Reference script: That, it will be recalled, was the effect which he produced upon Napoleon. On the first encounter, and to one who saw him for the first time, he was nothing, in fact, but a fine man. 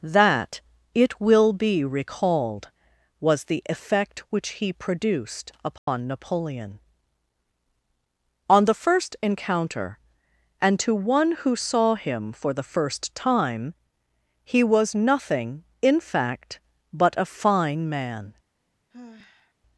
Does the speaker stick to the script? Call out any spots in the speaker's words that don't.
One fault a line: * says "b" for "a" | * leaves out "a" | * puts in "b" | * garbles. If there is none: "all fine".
all fine